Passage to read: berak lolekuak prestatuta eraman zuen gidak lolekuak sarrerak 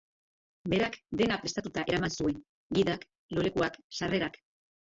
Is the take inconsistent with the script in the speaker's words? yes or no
yes